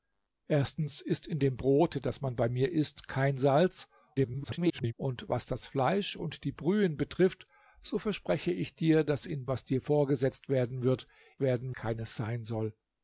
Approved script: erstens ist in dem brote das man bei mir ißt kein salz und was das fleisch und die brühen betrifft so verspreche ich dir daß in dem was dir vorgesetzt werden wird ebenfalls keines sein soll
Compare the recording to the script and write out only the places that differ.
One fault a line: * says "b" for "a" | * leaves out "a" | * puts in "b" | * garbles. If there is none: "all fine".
* garbles
* leaves out "dem"
* says "werden" for "ebenfalls"